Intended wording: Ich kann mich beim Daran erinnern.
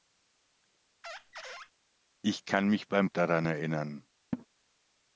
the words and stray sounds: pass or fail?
fail